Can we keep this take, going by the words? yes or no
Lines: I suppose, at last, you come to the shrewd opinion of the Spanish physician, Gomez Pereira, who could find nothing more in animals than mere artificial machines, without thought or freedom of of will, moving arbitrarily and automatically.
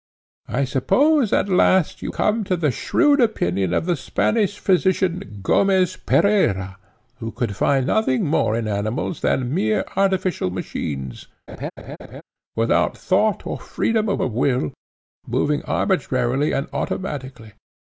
yes